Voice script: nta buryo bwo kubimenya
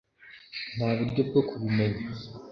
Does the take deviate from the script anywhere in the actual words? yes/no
no